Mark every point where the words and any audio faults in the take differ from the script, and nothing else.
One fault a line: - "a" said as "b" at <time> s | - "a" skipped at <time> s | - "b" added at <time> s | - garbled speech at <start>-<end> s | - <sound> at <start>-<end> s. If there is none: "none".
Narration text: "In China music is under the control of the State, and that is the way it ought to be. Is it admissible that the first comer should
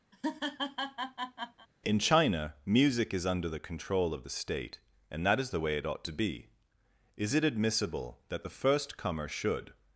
- laugh at 0.1-1.7 s